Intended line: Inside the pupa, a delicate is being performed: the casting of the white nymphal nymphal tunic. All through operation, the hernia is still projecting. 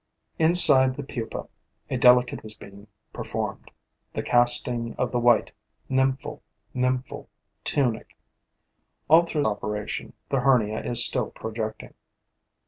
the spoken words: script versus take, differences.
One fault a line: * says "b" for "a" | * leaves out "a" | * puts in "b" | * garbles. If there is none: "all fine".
all fine